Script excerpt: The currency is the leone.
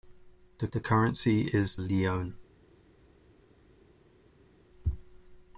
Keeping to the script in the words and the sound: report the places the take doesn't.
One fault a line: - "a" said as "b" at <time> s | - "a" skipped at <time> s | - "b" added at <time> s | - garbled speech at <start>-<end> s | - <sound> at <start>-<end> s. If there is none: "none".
- "the" added at 0.7 s
- "the" skipped at 1.8 s